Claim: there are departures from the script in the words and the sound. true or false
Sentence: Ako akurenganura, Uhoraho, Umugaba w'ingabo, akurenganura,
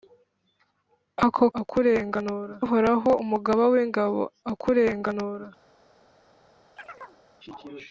true